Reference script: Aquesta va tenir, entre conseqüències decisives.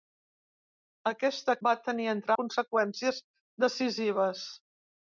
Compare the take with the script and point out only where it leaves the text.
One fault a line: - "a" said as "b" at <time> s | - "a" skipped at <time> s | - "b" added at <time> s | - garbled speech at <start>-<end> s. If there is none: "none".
none